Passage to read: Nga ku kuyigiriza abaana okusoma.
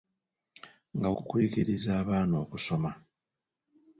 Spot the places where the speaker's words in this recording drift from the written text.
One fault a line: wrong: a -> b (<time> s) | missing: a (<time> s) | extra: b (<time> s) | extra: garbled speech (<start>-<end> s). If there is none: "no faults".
no faults